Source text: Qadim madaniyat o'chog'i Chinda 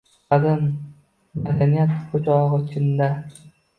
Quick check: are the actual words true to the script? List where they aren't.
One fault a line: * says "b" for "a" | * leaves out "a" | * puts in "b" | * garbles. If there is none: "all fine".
all fine